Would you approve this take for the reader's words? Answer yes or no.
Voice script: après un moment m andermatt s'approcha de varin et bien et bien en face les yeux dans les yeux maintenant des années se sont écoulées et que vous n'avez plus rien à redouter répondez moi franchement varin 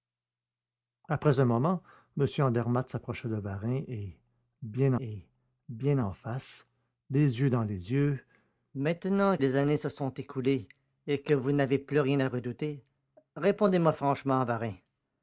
yes